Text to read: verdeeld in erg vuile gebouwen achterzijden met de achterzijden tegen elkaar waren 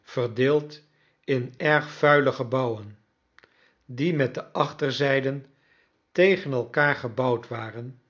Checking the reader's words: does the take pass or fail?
fail